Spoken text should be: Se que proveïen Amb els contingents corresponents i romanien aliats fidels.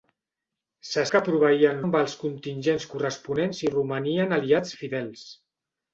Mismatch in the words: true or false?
false